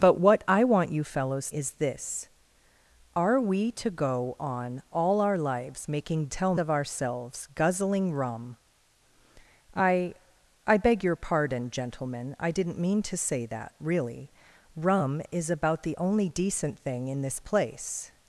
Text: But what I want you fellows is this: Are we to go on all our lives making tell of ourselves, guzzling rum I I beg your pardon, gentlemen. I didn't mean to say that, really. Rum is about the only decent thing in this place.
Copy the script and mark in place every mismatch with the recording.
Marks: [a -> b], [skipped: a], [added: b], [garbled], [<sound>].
But what I want you fellows is this: Are we to go on all our lives making tell of ourselves, guzzling rum I I beg your pardon, gentlemen. I didn't mean to say that, really. Rum is about the only decent thing in this place.